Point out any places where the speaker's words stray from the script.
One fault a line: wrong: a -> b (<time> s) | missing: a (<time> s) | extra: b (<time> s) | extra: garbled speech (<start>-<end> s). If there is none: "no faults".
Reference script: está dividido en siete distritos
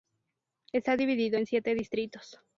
no faults